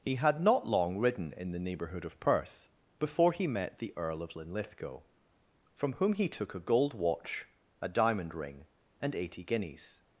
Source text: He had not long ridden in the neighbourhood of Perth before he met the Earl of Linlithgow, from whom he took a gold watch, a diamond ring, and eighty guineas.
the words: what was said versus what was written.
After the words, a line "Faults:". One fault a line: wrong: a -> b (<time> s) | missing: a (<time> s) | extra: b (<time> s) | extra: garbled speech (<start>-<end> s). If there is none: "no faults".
He had not long ridden in the neighbourhood of Perth before he met the Earl of Linlithgow, from whom he took a gold watch, a diamond ring, and eighty guineas.
Faults:
no faults